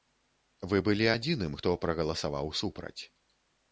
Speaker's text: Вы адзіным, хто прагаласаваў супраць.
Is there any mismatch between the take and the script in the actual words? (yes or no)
yes